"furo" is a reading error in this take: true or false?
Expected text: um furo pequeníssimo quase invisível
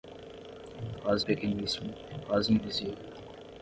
true